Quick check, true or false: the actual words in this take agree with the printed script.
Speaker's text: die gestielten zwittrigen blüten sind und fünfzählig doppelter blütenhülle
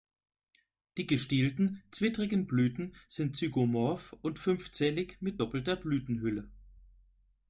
false